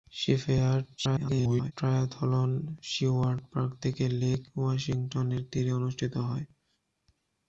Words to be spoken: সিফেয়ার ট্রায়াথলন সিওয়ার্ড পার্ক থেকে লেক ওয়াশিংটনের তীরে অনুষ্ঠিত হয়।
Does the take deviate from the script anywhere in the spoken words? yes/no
yes